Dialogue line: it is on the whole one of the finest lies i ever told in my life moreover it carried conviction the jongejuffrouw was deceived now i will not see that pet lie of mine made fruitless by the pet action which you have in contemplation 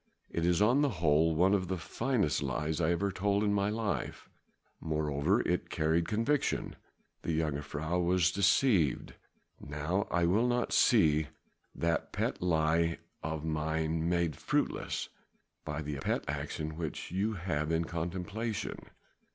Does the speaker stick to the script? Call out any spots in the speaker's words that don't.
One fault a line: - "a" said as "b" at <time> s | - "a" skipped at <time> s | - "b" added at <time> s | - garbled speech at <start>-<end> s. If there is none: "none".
none